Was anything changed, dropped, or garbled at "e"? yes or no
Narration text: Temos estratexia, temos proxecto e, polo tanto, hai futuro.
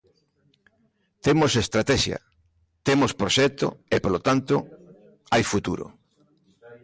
no